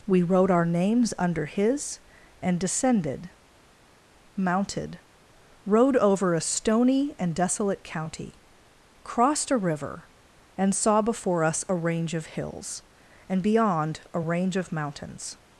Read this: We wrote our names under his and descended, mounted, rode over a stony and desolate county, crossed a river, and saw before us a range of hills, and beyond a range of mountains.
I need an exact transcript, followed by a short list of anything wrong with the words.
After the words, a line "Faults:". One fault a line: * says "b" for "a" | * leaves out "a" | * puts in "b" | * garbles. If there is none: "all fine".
We wrote our names under his and descended, mounted, rode over a stony and desolate county, crossed a river, and saw before us a range of hills, and beyond a range of mountains.
Faults:
all fine